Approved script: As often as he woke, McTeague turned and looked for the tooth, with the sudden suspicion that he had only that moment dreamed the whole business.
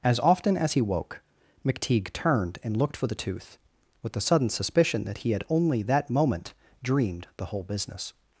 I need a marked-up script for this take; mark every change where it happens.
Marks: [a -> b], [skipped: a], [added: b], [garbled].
As often as he woke, McTeague turned and looked for the tooth, with the sudden suspicion that he had only that moment dreamed the whole business.